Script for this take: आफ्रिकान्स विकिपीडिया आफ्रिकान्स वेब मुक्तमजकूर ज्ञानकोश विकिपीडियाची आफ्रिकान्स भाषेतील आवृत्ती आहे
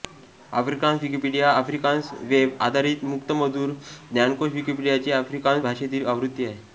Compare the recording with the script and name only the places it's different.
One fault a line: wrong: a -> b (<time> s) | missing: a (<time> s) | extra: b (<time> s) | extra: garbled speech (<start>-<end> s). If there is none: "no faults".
extra: आधारित (2.6 s)